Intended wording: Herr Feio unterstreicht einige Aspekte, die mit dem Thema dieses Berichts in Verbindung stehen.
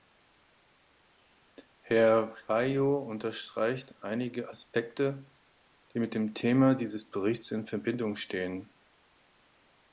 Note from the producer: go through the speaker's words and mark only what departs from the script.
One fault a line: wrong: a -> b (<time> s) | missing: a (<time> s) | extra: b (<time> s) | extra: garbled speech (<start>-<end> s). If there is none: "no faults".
no faults